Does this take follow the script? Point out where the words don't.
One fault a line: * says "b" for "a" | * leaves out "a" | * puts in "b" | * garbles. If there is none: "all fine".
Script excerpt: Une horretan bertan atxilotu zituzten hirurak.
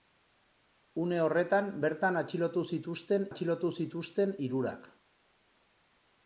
* puts in "atxilotu zituzten"